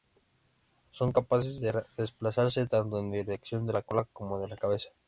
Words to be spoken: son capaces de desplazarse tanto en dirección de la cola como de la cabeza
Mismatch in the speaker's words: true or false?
false